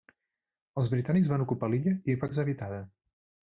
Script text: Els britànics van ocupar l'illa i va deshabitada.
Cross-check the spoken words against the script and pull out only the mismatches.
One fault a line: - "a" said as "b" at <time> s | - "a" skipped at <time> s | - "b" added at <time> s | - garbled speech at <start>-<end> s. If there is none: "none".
none